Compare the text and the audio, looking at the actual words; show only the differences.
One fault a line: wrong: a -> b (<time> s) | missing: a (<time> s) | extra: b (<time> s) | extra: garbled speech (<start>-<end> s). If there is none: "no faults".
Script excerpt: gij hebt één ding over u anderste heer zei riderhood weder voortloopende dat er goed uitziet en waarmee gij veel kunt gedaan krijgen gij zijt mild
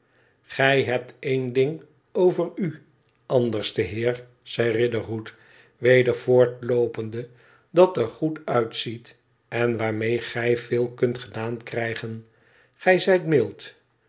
no faults